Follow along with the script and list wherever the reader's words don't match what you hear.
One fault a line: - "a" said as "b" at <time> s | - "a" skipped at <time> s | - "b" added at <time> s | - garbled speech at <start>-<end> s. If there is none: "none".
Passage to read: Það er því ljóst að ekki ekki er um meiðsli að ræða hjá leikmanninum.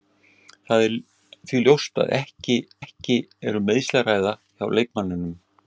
none